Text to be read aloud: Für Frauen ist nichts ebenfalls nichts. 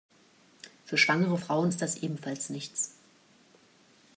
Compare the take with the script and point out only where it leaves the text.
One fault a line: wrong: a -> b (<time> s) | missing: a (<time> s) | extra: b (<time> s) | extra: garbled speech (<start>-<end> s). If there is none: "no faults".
extra: schwangere (1.0 s)
wrong: nichts -> das (1.8 s)